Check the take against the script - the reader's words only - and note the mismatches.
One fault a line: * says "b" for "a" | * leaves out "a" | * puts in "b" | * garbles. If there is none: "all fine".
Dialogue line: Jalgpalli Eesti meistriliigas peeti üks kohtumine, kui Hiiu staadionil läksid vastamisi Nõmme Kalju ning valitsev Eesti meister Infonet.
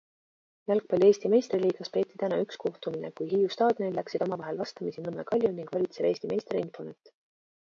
* puts in "täna"
* puts in "omavahel"